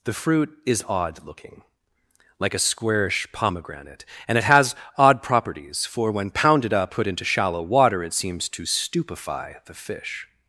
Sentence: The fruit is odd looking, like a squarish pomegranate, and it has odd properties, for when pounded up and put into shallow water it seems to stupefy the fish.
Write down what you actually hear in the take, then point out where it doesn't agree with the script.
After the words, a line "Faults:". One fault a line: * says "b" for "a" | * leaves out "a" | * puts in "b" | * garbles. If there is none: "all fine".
The fruit is odd looking, like a squarish pomegranate, and it has odd properties, for when pounded up put into shallow water it seems to stupefy the fish.
Faults:
* leaves out "and"